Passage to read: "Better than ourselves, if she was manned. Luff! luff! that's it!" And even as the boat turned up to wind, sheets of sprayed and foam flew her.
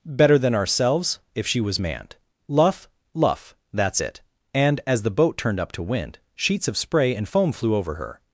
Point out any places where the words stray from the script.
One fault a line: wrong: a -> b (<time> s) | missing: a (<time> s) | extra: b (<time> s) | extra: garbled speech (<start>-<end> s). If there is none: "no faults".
missing: even (4.8 s)
wrong: sprayed -> spray (6.8 s)
extra: over (7.7 s)